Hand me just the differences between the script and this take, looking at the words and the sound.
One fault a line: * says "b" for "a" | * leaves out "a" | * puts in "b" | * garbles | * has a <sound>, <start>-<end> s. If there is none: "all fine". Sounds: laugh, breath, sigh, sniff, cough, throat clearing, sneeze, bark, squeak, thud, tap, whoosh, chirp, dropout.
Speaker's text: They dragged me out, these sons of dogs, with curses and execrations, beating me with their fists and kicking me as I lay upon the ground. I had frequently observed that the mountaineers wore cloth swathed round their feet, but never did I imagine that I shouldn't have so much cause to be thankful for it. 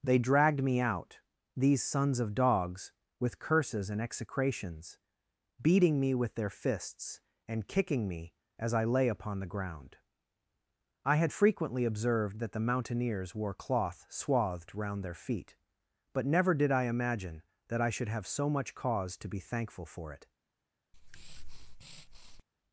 * says "should" for "shouldn't"
* has a breath, 20.9-22.4 s